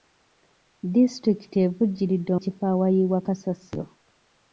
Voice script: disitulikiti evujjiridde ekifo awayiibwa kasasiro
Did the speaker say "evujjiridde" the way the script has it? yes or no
yes